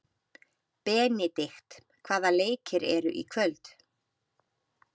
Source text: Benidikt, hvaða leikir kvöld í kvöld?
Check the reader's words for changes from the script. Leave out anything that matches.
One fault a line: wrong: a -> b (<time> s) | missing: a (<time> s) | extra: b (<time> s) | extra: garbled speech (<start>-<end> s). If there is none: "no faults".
wrong: kvöld -> eru (3.0 s)